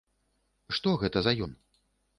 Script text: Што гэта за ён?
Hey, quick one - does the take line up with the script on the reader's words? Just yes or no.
yes